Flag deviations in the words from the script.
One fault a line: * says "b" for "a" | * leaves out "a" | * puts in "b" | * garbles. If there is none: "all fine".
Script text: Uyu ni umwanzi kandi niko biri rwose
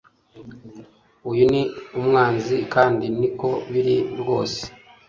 all fine